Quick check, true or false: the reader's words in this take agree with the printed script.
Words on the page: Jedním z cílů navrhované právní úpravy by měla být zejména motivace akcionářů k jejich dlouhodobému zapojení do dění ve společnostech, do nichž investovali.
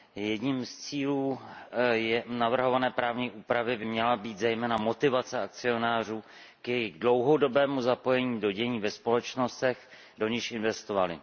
true